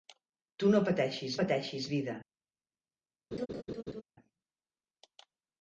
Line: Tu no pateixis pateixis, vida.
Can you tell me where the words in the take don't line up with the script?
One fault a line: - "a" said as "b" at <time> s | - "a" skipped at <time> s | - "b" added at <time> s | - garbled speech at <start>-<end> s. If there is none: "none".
none